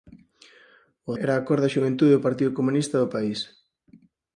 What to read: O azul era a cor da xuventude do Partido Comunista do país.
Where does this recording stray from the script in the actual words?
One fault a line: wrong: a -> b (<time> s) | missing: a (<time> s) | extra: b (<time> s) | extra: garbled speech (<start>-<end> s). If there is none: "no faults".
missing: azul (1.1 s)